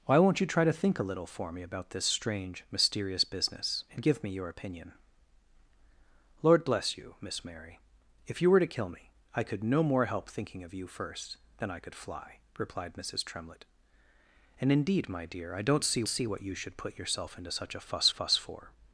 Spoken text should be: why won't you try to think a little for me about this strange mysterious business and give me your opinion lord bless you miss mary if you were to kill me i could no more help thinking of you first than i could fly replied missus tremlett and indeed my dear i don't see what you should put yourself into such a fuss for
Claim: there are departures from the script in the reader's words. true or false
true